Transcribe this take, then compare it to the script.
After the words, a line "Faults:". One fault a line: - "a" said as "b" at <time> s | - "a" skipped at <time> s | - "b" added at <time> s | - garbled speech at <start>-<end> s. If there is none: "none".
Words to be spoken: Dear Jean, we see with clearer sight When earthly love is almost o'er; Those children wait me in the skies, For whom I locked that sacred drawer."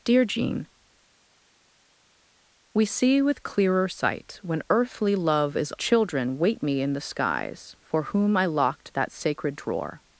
Dear Jean, we see with clearer sight When earthly love is children wait me in the skies, For whom I locked that sacred drawer."
Faults:
- "almost o'er Those" skipped at 5.7 s